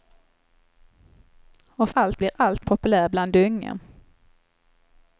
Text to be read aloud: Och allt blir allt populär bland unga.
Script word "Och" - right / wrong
right